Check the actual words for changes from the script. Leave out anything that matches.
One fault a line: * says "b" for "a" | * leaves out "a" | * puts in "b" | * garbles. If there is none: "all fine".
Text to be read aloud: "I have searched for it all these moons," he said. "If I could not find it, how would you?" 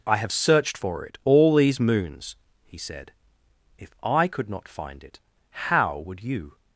all fine